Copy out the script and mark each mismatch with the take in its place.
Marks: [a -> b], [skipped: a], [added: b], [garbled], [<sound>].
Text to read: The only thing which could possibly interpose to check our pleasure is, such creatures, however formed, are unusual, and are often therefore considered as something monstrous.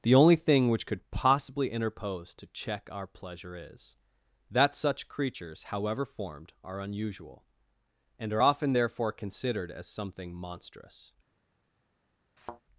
The only thing which could possibly interpose to check our pleasure is, [added: that] such creatures, however formed, are unusual, and are often therefore considered as something monstrous. [thud]